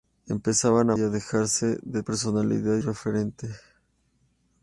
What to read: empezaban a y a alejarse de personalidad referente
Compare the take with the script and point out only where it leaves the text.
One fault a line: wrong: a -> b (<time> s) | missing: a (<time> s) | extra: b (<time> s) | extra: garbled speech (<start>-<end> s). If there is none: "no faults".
no faults